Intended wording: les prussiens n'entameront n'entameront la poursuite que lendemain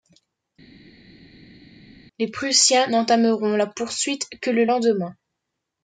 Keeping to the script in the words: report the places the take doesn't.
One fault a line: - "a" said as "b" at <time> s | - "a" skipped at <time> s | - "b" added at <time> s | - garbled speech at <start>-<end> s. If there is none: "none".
- "n'entameront" skipped at 3.6 s
- "le" added at 4.5 s